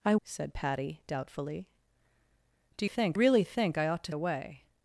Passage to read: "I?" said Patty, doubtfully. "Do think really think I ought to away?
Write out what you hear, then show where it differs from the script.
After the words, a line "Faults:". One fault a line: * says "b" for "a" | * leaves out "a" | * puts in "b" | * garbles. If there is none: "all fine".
"I?" said Patty, doubtfully. "Do think really think I ought to away?
Faults:
all fine